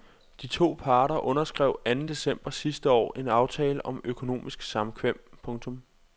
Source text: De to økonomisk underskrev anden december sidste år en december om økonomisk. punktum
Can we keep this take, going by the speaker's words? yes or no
no